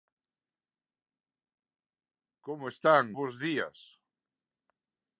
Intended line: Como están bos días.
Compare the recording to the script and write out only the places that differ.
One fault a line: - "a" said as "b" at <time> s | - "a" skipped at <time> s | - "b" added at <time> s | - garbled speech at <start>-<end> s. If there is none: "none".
none